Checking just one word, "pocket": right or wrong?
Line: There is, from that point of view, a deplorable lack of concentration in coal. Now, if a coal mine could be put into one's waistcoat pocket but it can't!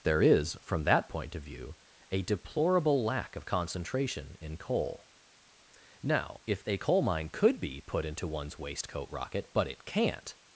wrong